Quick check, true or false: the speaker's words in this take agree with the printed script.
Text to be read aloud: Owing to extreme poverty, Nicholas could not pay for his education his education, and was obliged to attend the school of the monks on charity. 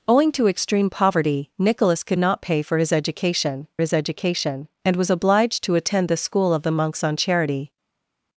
true